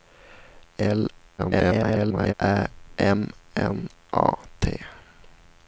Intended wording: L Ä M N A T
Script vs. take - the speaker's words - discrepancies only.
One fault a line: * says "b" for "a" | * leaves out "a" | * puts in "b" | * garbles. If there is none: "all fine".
* garbles